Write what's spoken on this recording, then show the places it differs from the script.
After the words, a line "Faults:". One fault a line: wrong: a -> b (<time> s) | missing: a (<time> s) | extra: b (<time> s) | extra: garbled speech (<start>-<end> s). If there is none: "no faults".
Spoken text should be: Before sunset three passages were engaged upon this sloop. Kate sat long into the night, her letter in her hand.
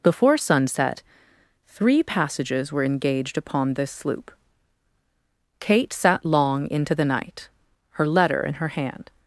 Before sunset three passages were engaged upon this sloop. Kate sat long into the night, her letter in her hand.
Faults:
no faults